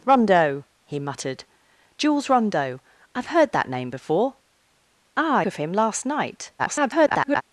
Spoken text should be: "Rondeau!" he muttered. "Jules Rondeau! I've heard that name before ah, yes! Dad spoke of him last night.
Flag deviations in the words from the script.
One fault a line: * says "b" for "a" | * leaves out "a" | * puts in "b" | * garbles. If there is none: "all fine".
* leaves out "yes Dad spoke"
* garbles